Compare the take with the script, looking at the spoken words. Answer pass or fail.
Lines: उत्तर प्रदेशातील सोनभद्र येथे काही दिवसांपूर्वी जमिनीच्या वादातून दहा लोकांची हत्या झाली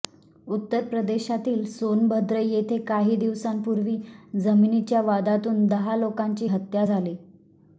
pass